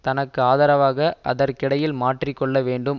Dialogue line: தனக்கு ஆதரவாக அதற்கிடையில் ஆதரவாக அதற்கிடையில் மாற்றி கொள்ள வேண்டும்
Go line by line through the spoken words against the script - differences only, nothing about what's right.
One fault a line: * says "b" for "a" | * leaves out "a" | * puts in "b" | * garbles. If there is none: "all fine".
* leaves out "ஆதரவாக அதற்கிடையில்"